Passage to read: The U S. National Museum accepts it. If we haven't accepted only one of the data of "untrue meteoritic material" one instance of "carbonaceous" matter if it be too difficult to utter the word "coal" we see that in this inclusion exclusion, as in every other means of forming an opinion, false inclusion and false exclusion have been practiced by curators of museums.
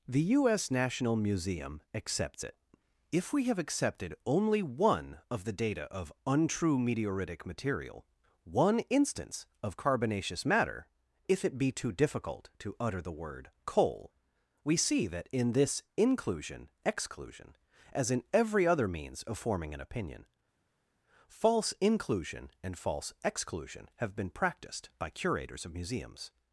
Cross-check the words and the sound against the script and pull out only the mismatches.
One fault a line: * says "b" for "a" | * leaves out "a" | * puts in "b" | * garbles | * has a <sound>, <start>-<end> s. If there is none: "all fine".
* says "have" for "haven't"